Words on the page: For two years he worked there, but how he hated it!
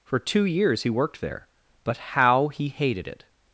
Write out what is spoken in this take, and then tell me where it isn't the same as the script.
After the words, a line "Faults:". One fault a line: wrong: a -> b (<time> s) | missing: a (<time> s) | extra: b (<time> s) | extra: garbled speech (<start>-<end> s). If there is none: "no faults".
For two years he worked there, but how he hated it!
Faults:
no faults